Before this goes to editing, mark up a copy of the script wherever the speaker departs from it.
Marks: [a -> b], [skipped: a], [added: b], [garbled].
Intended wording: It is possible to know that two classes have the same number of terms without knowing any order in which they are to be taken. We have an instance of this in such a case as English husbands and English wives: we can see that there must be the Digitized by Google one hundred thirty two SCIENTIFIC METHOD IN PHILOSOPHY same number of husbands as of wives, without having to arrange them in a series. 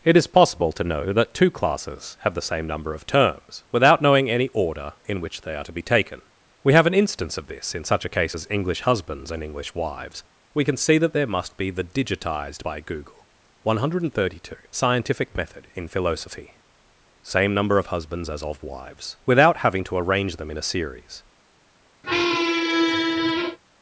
It is possible to know that two classes have the same number of terms without knowing any order in which they are to be taken. We have an instance of this in such a case as English husbands and English wives: we can see that there must be the Digitized by Google one hundred thirty two SCIENTIFIC METHOD IN PHILOSOPHY same number of husbands as of wives, without having to arrange them in a series.